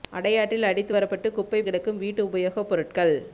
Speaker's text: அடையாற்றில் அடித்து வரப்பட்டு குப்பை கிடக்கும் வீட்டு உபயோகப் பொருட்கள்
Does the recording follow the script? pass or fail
pass